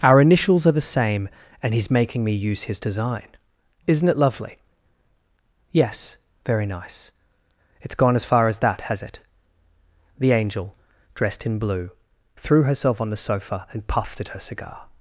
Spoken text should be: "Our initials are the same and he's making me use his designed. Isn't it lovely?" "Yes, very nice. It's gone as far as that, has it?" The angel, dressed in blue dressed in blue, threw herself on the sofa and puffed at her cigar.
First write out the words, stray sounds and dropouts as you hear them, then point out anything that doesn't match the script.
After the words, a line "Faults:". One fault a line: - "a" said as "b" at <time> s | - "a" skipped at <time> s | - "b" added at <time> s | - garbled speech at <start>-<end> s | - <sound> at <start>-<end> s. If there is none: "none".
"Our initials are the same and he's making me use his design. Isn't it lovely?" "Yes, very nice. It's gone as far as that, has it?" The angel, dressed in blue, threw herself on the sofa and puffed at her cigar.
Faults:
- "designed" said as "design" at 2.8 s
- "dressed in blue" skipped at 11.9 s